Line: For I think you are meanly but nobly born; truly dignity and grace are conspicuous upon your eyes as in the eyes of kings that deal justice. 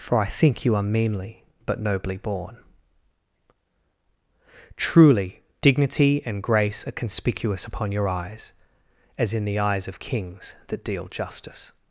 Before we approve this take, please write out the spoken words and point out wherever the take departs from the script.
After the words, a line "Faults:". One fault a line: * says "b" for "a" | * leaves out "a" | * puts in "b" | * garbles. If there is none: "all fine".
For I think you are meanly but nobly born; truly dignity and grace are conspicuous upon your eyes as in the eyes of kings that deal justice.
Faults:
all fine